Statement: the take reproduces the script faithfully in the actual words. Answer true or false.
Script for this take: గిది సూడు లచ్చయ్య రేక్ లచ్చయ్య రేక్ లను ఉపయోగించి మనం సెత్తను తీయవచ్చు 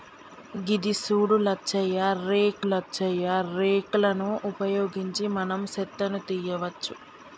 true